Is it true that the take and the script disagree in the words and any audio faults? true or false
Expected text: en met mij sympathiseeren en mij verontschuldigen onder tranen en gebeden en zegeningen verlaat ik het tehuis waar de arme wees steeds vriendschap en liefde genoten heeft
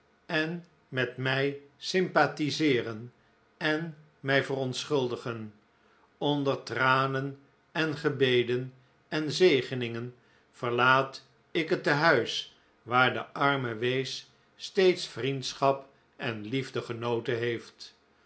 false